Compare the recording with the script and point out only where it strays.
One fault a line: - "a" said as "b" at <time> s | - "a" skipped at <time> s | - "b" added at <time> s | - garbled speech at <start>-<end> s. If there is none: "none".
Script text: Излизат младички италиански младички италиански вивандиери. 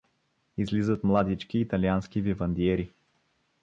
- "младички италиански" skipped at 2.2 s